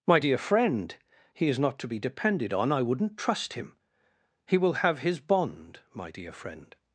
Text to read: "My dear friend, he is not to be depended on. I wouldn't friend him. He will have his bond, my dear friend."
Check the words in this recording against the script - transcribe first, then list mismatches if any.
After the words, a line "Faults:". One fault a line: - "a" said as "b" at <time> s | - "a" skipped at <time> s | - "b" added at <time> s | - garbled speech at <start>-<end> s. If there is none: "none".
"My dear friend, he is not to be depended on. I wouldn't trust him. He will have his bond, my dear friend."
Faults:
- "friend" said as "trust" at 3.2 s